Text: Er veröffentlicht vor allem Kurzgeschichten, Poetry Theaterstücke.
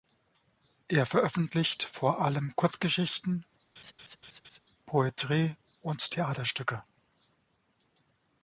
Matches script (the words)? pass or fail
fail